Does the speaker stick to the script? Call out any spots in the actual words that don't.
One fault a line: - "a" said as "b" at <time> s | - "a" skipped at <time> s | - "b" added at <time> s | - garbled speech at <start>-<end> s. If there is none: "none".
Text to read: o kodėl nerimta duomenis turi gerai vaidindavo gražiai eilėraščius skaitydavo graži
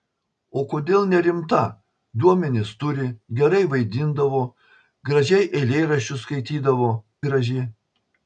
none